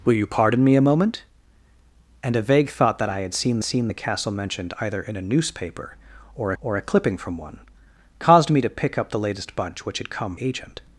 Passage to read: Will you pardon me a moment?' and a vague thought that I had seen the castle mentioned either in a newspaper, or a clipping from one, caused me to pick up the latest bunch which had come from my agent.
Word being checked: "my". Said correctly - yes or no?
no